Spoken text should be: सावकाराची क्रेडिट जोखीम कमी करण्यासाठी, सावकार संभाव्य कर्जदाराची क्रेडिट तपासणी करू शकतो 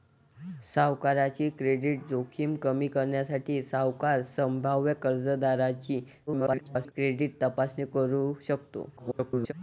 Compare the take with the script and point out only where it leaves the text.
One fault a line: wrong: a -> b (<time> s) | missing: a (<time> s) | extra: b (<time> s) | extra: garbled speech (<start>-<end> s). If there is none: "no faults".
extra: garbled speech (6.3-6.9 s)
extra: garbled speech (9.0-9.5 s)